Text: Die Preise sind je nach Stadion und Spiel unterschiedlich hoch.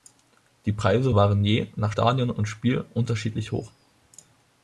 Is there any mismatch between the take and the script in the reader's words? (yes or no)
yes